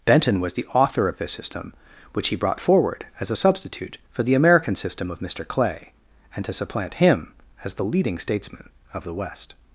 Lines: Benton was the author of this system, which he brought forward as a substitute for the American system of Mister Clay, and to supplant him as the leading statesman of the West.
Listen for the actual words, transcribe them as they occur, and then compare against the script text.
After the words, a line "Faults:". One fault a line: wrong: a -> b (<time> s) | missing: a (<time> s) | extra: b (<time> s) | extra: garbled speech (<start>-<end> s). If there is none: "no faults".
Benton was the author of this system, which he brought forward as a substitute for the American system of Mister Clay, and to supplant him as the leading statesman of the West.
Faults:
no faults